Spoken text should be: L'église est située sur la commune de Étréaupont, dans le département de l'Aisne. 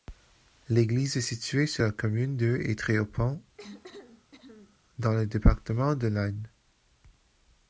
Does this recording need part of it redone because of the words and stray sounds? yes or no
yes